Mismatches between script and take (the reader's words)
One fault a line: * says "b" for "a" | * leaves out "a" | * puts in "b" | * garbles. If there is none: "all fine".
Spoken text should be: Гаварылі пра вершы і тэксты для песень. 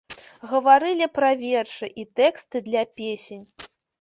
all fine